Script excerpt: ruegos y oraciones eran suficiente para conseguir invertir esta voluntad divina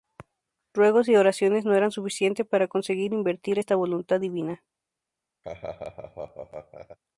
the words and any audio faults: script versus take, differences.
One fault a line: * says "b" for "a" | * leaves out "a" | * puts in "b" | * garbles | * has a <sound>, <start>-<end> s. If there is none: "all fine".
* puts in "no"
* has a laugh, 5.4-7.0 s